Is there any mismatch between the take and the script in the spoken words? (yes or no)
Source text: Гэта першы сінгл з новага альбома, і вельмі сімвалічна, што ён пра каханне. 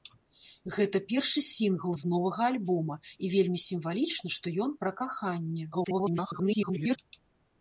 yes